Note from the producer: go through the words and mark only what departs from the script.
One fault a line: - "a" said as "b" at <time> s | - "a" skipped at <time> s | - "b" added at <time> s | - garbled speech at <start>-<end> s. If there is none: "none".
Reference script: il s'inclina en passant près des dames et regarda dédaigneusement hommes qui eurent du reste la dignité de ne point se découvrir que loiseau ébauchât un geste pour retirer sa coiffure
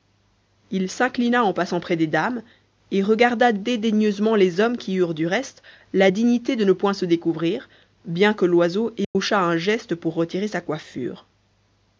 - "les" added at 4.3 s
- "bien" added at 8.0 s